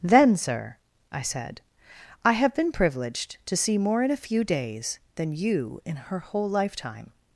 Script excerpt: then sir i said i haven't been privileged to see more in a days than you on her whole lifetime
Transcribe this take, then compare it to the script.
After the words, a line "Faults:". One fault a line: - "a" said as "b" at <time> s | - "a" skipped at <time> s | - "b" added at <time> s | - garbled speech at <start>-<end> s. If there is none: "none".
then sir i said i have been privileged to see more in a few days than you in her whole lifetime
Faults:
- "haven't" said as "have" at 2.3 s
- "few" added at 4.2 s
- "on" said as "in" at 5.8 s